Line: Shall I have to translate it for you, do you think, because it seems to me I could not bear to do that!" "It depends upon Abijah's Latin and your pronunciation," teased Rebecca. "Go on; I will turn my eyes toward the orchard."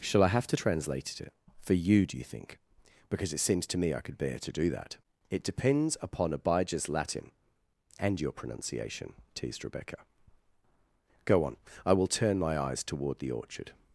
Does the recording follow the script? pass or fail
fail